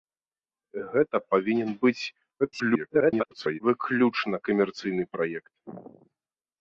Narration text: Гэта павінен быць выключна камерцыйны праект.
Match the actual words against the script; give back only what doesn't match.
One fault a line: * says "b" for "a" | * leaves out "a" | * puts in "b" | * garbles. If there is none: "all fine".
* garbles